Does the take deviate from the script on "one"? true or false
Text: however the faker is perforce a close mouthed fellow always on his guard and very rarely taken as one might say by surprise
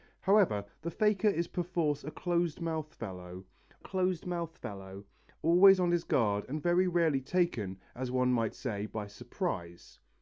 false